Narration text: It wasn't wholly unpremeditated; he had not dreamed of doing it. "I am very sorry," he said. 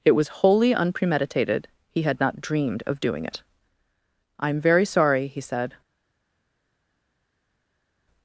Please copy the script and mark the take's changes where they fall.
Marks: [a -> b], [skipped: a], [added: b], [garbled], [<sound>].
It [wasn't -> was] wholly unpremeditated; he had not dreamed of doing it. "I am very sorry," he said.